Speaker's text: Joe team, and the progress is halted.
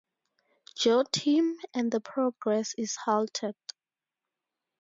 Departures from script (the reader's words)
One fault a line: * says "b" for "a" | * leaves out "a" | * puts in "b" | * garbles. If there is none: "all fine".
all fine